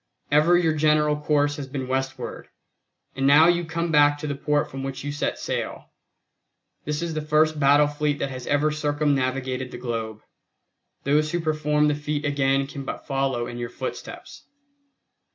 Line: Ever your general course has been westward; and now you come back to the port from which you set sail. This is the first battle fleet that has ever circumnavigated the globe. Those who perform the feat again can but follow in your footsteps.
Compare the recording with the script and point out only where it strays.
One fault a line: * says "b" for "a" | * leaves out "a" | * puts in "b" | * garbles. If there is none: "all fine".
all fine